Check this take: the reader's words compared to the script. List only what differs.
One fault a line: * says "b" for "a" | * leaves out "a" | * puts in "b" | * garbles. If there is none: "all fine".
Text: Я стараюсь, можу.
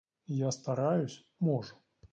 all fine